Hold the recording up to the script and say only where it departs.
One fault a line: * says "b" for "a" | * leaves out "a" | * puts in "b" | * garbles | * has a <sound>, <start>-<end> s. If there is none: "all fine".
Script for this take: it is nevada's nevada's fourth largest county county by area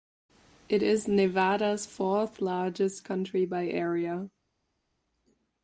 * leaves out "nevada's"
* leaves out "county"